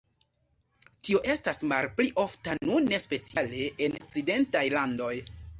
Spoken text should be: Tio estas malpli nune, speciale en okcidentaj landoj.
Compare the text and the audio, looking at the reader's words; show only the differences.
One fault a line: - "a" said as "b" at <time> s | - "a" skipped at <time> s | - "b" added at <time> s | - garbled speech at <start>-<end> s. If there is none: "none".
- "ofta" added at 2.2 s